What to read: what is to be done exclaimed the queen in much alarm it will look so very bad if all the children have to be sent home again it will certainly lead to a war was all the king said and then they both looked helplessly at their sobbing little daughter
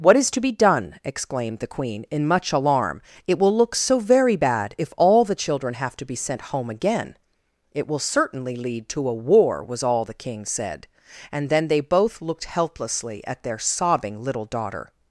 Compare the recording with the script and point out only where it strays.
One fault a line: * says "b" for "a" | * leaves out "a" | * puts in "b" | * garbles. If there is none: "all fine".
all fine